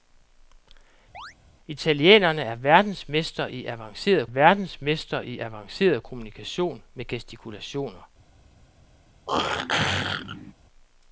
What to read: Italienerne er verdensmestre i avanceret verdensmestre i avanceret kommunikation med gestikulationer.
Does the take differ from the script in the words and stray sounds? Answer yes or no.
yes